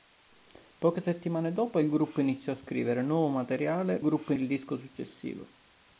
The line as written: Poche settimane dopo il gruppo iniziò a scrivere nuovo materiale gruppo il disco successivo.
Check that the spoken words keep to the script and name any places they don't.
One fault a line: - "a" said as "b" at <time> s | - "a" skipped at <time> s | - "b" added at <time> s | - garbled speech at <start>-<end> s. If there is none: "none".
none